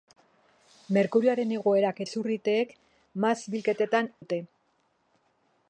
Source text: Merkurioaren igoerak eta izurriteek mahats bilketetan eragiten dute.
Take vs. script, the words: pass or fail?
fail